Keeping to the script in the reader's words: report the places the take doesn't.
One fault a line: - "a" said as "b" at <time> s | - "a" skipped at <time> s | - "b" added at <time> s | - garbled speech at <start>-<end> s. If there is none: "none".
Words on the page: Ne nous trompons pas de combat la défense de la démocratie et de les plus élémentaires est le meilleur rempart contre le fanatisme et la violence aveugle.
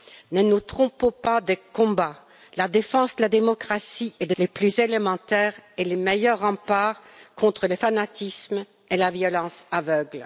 none